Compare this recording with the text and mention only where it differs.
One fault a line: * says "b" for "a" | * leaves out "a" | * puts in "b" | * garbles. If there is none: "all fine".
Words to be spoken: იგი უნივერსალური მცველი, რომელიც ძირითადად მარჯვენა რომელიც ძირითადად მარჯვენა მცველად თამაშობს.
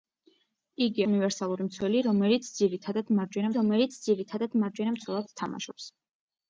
all fine